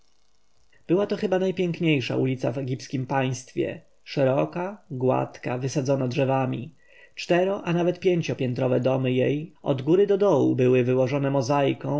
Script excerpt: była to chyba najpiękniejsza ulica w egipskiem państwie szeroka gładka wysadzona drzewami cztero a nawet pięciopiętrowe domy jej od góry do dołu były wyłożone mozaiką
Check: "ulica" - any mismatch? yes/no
no